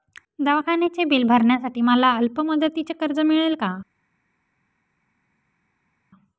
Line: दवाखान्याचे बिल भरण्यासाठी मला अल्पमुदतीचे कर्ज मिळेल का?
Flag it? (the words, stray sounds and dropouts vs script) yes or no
no